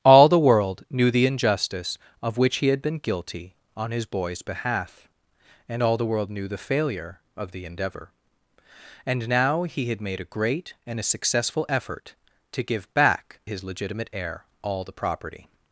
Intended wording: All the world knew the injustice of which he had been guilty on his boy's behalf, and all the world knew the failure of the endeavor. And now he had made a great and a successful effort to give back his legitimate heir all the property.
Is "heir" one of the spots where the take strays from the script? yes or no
no